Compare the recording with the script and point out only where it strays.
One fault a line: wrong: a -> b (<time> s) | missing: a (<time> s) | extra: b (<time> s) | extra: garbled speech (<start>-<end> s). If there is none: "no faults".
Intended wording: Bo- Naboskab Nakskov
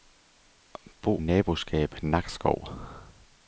no faults